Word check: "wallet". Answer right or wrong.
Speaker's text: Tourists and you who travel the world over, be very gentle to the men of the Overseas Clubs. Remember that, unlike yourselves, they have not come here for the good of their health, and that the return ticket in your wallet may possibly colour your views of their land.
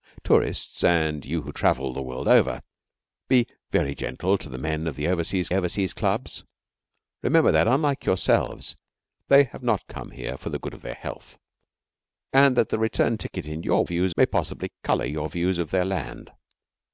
wrong